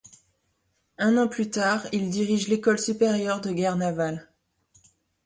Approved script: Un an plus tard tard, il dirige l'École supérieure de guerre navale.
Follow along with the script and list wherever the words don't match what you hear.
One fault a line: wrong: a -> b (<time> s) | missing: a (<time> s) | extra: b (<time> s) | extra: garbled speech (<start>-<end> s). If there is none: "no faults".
missing: tard (1.9 s)